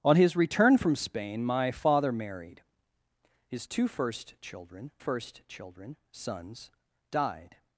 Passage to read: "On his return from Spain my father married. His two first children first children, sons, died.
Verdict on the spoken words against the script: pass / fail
pass